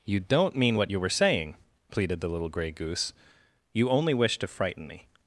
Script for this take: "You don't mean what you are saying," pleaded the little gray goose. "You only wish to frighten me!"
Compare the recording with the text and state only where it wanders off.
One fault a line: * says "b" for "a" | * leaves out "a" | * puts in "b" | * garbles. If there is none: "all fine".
* says "were" for "are"